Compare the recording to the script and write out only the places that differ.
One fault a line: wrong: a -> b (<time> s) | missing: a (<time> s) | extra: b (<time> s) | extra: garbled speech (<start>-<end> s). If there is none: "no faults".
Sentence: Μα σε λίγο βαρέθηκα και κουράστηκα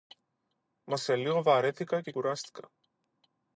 no faults